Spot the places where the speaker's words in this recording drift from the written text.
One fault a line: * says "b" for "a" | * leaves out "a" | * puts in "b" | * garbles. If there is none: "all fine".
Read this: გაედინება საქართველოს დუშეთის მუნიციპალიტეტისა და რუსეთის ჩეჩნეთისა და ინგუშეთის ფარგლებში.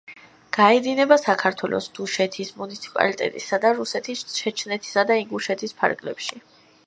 all fine